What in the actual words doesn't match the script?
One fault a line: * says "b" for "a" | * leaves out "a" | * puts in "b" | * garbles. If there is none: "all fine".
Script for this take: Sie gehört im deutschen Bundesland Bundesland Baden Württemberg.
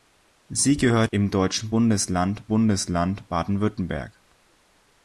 all fine